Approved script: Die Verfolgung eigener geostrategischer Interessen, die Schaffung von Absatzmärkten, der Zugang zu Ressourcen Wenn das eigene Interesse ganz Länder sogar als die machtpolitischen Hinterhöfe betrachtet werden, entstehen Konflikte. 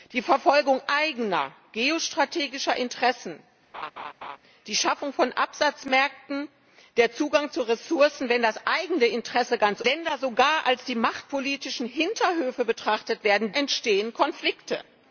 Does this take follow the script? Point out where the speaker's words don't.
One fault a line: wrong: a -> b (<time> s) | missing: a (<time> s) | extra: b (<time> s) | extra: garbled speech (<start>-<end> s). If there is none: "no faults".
no faults